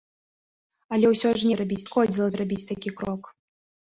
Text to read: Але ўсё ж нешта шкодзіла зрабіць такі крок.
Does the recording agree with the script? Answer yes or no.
no